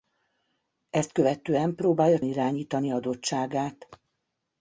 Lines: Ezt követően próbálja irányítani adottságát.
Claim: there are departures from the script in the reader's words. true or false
false